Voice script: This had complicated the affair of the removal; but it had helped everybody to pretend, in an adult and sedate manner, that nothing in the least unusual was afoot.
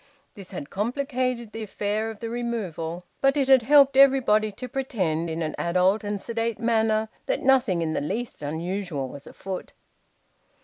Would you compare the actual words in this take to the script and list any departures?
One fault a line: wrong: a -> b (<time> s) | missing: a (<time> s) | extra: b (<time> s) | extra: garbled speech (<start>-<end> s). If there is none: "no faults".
no faults